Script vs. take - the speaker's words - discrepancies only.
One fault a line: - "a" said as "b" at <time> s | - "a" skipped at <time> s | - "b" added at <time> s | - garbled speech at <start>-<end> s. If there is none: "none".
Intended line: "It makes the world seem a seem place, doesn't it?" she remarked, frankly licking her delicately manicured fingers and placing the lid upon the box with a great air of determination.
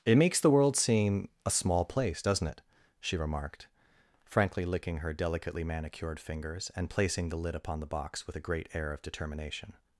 - "seem" said as "small" at 1.5 s